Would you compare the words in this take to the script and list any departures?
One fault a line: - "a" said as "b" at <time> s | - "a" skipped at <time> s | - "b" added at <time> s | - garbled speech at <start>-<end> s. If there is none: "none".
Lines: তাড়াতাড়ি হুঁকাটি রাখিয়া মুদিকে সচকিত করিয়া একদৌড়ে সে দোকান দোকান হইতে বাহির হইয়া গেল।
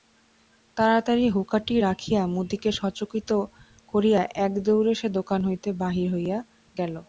- "দোকান" skipped at 5.4 s